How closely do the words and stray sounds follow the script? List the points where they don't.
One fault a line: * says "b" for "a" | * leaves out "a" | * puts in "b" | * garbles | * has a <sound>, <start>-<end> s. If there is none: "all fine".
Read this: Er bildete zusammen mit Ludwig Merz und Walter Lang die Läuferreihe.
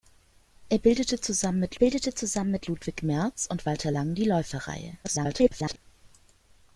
* puts in "bildete zusammen mit"
* garbles